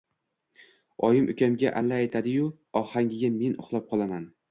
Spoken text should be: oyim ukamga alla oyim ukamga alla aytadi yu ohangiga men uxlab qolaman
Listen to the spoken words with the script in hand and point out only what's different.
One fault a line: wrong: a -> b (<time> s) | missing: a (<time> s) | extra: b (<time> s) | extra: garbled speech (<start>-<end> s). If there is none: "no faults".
missing: oyim ukamga alla (2.0 s)